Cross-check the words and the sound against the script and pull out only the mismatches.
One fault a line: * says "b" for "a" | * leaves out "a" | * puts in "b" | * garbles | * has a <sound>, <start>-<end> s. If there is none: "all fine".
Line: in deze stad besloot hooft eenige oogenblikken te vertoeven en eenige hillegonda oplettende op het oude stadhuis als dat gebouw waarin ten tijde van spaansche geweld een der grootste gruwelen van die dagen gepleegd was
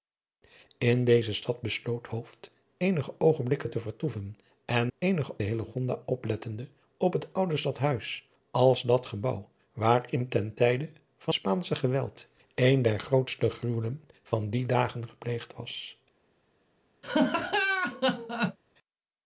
* has a laugh, 17.0-18.6 s